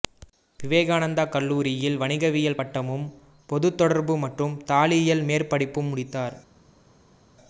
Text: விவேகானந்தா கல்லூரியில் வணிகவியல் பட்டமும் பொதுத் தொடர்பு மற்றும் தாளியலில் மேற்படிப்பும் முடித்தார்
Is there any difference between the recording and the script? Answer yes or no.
no